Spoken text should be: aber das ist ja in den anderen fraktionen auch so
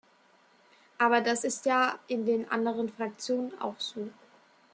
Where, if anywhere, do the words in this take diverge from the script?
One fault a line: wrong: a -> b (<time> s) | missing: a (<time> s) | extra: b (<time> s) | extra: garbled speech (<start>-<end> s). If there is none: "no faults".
no faults